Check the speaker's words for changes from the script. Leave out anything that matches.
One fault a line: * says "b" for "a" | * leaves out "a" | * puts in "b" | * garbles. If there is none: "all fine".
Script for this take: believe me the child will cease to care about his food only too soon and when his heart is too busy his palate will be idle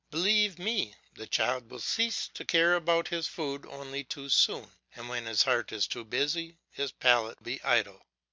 * leaves out "will"